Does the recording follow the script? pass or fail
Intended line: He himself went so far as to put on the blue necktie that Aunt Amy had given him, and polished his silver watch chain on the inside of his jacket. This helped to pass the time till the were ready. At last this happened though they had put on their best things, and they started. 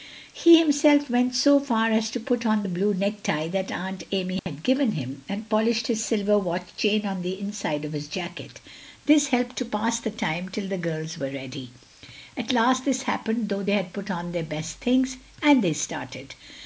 fail